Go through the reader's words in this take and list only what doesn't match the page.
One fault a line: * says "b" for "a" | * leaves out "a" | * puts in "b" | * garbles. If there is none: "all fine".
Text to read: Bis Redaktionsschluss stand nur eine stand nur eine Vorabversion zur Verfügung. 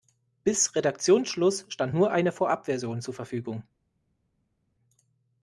* leaves out "stand nur eine"